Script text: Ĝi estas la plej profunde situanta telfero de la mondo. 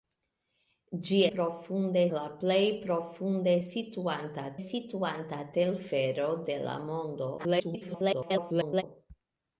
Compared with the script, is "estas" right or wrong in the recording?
wrong